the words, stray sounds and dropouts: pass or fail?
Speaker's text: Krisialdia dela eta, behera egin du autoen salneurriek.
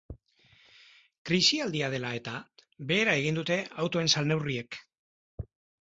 fail